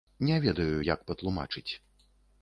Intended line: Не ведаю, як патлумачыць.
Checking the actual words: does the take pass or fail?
pass